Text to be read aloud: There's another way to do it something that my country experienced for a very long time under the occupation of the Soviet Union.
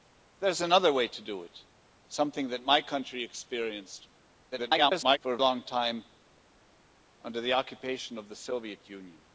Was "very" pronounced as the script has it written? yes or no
no